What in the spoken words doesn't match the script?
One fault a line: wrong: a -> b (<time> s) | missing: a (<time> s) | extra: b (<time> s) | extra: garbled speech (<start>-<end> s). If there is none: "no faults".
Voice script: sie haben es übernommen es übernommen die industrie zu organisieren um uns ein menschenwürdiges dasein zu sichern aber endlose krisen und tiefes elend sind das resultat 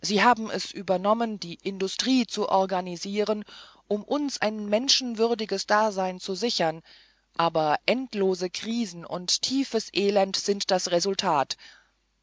missing: es übernommen (1.4 s)